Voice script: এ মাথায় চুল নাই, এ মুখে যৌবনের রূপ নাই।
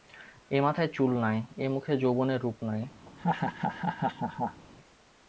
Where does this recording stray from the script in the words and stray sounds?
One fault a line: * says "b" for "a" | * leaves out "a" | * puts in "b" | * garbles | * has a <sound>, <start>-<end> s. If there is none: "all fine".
* has a laugh, 3.1-4.6 s